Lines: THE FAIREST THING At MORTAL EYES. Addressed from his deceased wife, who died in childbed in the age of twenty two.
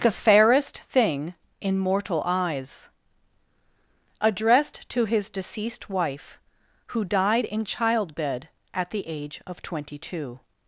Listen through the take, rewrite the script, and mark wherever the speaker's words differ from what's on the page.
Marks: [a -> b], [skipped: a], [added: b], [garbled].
THE FAIREST THING [At -> IN] MORTAL EYES. Addressed [from -> to] his deceased wife, who died in childbed [in -> at] the age of twenty two.